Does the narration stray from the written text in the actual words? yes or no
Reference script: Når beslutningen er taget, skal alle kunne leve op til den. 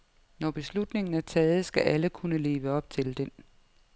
no